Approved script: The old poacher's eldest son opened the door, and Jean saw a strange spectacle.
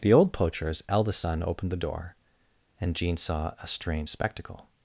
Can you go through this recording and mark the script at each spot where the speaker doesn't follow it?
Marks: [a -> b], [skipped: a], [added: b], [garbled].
The old poacher's eldest son opened the door, and Jean saw a strange spectacle.